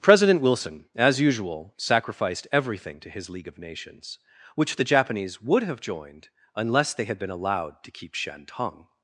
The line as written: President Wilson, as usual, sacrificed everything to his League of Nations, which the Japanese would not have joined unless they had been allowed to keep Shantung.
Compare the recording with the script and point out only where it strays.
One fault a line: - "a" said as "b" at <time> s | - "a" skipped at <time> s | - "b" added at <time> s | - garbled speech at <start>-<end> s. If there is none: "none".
- "not" skipped at 5.6 s